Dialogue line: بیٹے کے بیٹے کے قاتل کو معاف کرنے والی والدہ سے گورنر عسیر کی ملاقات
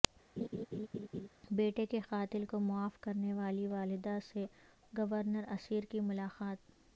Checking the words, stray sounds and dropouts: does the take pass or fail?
fail